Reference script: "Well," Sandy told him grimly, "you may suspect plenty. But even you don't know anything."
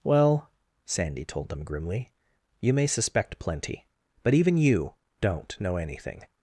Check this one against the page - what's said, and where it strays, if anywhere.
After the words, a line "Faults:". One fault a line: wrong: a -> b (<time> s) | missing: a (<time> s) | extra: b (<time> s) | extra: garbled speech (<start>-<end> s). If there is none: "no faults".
"Well," Sandy told them grimly, "you may suspect plenty. But even you don't know anything."
Faults:
wrong: him -> them (1.5 s)